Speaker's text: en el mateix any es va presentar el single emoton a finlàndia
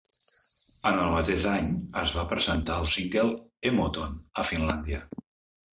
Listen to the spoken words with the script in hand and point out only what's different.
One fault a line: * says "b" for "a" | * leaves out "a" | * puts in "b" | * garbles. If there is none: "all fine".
all fine